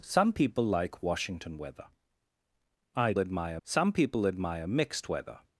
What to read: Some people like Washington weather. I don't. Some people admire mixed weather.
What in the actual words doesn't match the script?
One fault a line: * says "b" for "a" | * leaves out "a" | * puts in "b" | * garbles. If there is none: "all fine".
* says "admire" for "don't"